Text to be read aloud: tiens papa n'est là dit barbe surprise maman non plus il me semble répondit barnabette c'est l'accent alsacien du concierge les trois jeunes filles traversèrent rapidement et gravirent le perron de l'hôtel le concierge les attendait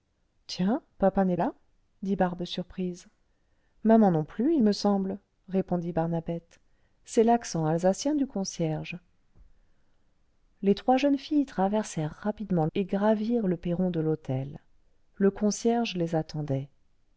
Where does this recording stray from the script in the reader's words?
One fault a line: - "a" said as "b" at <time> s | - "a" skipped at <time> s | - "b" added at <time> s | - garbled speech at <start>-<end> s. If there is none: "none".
none